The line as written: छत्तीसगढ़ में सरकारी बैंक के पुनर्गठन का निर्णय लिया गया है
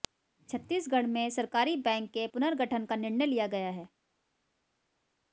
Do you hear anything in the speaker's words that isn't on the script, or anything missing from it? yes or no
no